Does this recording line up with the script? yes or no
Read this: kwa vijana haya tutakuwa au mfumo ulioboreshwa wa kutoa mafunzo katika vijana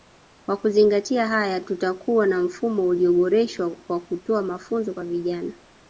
no